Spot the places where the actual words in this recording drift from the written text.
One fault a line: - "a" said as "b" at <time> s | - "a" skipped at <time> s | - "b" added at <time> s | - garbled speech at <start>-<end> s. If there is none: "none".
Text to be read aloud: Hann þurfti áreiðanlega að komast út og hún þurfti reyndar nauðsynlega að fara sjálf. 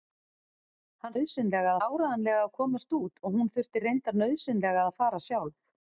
- "þurfti" said as "nauðsynlega" at 1.1 s